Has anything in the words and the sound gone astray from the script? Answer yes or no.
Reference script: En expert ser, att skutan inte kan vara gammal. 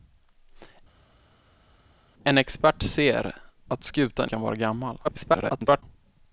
yes